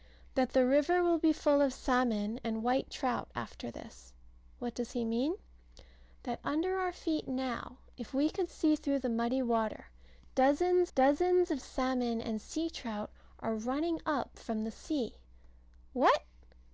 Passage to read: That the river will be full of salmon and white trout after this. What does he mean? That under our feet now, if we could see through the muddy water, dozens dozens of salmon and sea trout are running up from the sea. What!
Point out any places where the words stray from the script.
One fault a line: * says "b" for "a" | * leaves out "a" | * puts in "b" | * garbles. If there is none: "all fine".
all fine